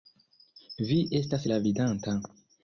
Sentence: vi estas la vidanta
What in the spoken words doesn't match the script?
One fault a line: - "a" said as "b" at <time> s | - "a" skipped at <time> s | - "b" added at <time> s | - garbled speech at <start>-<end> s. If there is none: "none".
none